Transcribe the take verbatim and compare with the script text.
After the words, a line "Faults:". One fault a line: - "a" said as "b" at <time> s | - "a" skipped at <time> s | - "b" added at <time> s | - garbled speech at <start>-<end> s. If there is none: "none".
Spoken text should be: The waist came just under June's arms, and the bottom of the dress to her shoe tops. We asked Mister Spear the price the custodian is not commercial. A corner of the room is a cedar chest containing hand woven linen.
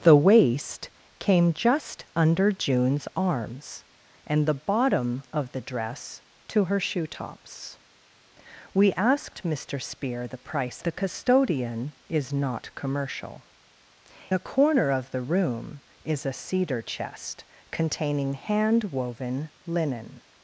The waist came just under June's arms, and the bottom of the dress to her shoe tops. We asked Mister Spear the price the custodian is not commercial. A corner of the room is a cedar chest containing hand woven linen.
Faults:
none